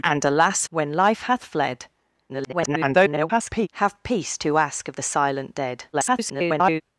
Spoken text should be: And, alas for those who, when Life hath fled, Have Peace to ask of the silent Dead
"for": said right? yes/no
no